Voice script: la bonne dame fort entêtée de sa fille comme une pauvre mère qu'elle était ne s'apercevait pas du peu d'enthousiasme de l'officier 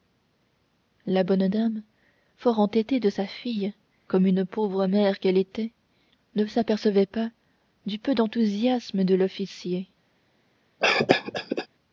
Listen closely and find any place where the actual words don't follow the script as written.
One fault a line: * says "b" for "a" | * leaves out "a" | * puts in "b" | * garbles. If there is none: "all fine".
all fine